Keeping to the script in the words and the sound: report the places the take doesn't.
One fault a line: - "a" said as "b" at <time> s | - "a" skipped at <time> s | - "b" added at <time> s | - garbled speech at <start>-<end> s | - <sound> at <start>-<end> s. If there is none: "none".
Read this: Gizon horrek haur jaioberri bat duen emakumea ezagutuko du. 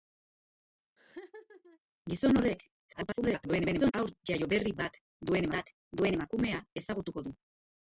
- laugh at 1.0-1.8 s
- garbled speech at 2.9-3.9 s
- "bat duen" added at 5.6 s